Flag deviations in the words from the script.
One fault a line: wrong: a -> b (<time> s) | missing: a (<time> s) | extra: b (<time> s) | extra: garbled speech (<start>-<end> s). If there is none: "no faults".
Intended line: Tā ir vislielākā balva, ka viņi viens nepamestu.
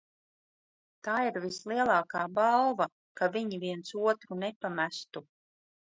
extra: otru (4.1 s)